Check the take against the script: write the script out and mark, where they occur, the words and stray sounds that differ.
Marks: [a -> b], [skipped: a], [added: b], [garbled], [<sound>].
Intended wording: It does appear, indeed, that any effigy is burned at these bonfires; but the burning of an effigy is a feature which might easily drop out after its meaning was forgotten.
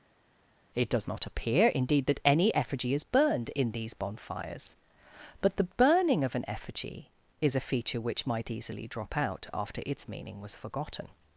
It does [added: not] appear, indeed, that any effigy is burned [at -> in] these bonfires; but the burning of an effigy is a feature which might easily drop out after its meaning was forgotten.